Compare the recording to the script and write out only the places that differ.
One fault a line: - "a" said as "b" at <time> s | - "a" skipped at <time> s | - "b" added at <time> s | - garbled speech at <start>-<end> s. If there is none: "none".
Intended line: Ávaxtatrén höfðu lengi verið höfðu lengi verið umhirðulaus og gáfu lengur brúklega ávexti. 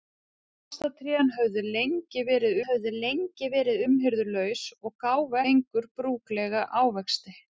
none